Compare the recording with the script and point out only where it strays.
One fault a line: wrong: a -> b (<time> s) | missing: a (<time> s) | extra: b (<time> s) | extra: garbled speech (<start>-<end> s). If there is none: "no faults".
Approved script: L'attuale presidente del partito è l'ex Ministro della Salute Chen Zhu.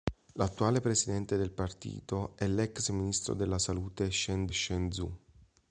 extra: Chen (4.5 s)